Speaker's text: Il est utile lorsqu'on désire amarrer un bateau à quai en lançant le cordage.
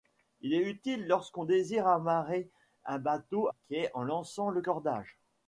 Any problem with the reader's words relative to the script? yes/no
yes